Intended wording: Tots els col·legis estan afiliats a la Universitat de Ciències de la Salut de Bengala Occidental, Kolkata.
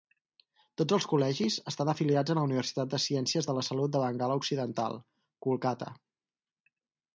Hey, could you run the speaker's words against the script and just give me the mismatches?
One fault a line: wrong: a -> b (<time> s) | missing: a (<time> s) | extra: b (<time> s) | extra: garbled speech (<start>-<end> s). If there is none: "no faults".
no faults